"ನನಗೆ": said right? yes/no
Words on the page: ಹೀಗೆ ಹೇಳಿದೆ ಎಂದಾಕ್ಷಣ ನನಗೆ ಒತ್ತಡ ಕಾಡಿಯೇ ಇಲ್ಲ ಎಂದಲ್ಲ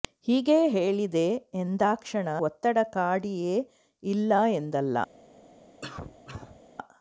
no